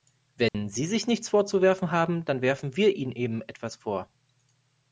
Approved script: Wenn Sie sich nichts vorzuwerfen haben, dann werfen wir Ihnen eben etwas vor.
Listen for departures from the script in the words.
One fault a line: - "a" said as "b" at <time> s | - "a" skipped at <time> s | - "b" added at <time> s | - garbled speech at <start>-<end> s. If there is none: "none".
none